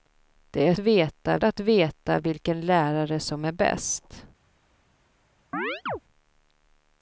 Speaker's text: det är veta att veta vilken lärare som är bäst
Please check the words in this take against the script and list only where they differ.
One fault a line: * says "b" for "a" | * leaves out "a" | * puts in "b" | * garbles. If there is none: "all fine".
all fine